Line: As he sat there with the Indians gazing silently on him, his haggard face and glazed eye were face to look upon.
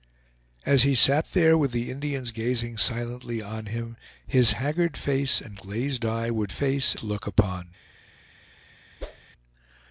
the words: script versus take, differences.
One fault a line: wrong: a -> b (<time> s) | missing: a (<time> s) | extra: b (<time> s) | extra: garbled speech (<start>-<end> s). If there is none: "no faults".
no faults